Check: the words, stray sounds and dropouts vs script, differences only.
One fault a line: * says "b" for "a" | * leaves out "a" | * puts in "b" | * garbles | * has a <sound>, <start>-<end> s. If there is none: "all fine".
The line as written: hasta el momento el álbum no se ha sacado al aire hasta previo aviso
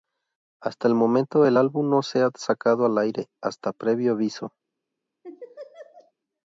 * has a laugh, 5.2-6.1 s